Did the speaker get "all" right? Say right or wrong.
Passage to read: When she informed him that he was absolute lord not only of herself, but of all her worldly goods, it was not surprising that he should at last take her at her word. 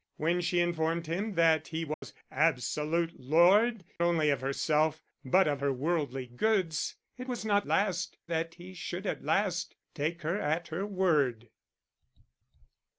wrong